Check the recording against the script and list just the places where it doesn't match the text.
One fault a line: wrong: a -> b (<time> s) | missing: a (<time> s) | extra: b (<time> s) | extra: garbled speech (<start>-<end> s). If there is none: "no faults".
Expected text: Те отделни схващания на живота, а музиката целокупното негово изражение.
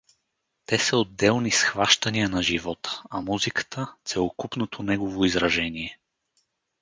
extra: са (0.8 s)